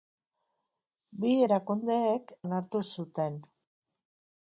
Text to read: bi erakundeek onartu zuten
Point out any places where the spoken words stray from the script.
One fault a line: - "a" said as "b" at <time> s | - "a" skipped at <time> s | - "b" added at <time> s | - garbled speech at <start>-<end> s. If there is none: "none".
none